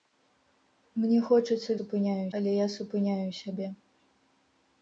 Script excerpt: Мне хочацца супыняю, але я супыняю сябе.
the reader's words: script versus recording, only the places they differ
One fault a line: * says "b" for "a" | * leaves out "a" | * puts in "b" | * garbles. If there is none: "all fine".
all fine